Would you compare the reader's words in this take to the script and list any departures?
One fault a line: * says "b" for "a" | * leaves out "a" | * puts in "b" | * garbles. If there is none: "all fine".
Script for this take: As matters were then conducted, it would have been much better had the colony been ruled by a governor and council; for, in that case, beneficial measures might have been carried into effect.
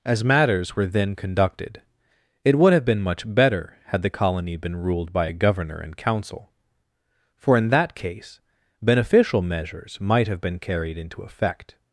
all fine